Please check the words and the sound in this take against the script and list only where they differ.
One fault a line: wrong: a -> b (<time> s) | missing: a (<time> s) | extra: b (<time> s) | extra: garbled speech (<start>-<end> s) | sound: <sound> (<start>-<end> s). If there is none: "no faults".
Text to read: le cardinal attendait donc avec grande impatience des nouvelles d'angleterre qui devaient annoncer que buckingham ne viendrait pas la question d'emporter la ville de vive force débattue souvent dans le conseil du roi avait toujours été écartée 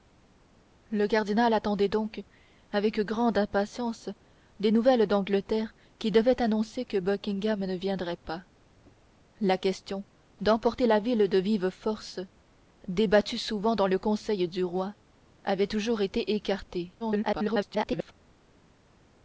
extra: garbled speech (17.0-18.1 s)